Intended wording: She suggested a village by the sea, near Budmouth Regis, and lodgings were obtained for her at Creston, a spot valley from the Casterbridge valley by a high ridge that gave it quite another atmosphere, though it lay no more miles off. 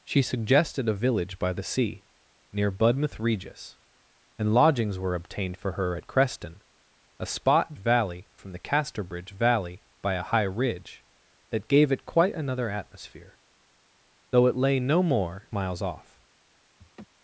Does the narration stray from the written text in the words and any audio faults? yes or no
yes